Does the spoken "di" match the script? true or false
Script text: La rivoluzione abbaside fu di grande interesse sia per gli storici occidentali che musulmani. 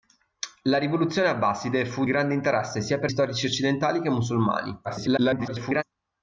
false